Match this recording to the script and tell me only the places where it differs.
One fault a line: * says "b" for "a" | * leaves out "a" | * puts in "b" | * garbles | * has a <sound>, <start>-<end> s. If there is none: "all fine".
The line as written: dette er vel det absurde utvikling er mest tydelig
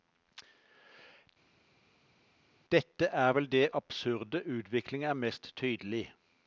all fine